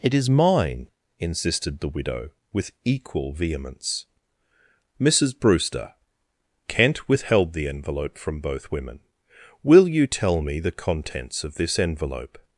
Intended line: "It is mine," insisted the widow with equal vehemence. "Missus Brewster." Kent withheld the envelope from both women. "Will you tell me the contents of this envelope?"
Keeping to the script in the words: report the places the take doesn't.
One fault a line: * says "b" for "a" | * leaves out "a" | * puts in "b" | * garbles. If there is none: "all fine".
all fine